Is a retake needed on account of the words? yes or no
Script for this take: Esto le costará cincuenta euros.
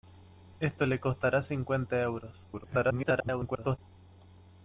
yes